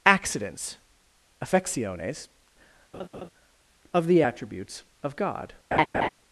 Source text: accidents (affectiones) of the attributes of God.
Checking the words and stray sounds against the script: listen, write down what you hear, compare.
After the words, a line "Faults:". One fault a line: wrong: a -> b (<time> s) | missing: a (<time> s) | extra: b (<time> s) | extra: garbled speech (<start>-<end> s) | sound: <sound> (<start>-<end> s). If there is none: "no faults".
accidents (affectiones) of the attributes of God.
Faults:
sound: laugh (2.9-3.3 s)
sound: laugh (5.7-6.1 s)